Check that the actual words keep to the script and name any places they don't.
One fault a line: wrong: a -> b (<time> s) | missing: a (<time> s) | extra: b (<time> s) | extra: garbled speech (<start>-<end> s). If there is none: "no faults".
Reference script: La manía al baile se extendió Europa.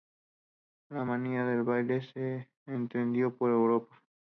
wrong: al -> del (1.4 s)
extra: por (3.4 s)